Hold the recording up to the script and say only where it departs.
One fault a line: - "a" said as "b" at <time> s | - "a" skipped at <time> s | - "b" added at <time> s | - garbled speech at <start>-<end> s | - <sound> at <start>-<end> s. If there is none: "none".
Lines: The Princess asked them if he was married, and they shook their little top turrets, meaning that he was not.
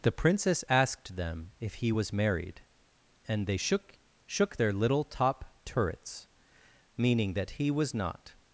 - "shook" added at 4.3 s